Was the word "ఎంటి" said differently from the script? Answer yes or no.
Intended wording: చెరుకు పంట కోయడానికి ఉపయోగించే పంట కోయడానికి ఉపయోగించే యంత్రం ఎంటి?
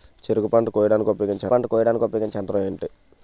no